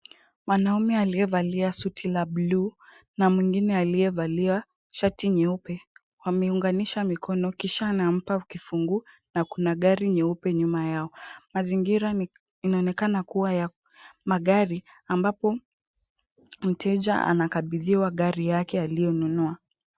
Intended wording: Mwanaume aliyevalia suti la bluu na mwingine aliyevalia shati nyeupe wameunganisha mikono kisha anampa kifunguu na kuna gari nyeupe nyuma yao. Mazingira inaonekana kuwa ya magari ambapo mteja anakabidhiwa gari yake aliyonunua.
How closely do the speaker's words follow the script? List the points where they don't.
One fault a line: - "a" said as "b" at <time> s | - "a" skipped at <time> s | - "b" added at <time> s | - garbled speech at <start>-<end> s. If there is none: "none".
none